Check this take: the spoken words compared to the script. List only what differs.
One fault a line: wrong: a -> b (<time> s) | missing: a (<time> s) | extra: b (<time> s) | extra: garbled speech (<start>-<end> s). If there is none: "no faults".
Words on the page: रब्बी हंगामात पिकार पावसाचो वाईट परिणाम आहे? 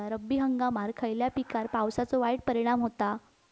extra: खयल्या (1.0 s)
wrong: आहे -> होता (2.8 s)